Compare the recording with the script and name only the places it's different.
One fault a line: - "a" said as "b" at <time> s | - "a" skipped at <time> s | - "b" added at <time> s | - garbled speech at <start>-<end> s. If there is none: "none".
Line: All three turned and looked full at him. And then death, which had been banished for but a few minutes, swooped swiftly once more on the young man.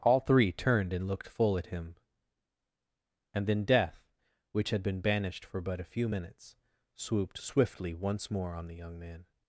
none